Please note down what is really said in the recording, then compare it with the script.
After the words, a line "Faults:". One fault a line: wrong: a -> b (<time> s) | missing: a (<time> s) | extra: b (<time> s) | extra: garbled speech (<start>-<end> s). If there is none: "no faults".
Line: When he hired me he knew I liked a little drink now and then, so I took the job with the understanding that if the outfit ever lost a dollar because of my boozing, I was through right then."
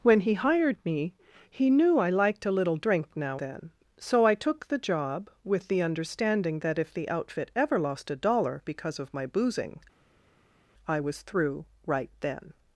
When he hired me he knew I liked a little drink now then, so I took the job with the understanding that if the outfit ever lost a dollar because of my boozing, I was through right then."
Faults:
missing: and (3.4 s)